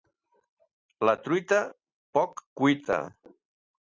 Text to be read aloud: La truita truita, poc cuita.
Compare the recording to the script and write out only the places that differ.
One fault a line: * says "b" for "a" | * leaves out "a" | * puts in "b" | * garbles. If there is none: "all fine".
* leaves out "truita"